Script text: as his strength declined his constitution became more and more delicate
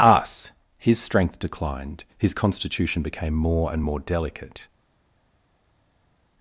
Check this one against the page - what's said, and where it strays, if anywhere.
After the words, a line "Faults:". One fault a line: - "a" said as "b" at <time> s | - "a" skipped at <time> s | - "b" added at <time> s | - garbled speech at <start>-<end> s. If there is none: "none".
us his strength declined his constitution became more and more delicate
Faults:
- "as" said as "us" at 0.0 s